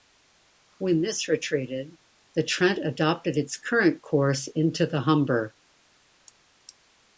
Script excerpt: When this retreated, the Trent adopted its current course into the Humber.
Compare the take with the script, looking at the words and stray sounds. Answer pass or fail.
pass